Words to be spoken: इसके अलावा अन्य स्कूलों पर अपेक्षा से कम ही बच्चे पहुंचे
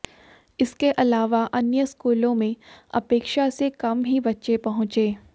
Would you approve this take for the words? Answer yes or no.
no